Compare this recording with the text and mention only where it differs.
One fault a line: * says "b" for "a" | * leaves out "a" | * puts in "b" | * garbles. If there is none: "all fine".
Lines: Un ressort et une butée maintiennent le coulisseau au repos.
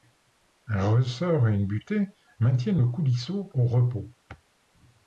all fine